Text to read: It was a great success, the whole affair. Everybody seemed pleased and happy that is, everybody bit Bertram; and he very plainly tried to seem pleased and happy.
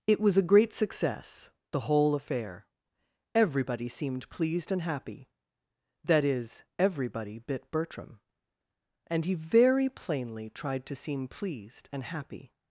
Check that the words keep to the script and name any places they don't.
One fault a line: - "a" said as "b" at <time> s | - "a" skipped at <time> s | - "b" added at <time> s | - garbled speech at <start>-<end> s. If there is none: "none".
none